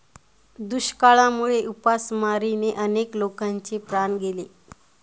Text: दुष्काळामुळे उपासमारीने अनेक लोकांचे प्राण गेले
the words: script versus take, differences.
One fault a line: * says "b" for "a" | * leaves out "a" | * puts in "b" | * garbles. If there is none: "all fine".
all fine